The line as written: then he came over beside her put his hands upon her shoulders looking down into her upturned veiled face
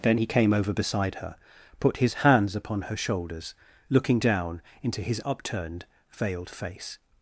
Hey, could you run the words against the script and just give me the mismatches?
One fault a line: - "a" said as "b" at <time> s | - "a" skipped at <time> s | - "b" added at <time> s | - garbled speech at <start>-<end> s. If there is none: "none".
- "her" said as "his" at 5.0 s